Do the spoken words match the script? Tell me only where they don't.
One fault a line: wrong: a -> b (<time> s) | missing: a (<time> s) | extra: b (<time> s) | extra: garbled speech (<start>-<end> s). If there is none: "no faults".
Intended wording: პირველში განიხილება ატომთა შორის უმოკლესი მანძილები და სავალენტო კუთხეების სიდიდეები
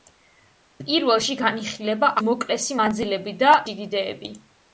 missing: ატომთა შორის (2.1 s)
missing: სავალენტო კუთხეების (3.5 s)